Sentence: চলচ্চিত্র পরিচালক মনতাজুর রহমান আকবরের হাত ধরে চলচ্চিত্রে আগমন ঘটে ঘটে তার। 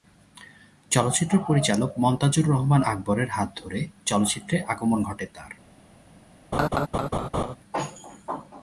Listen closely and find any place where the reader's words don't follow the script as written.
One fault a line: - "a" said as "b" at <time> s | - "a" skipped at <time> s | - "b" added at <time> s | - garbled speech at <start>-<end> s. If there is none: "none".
- "ঘটে" skipped at 5.3 s